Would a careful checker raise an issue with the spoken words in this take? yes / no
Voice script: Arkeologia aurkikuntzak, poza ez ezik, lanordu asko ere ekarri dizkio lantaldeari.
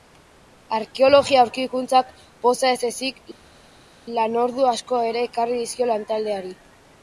no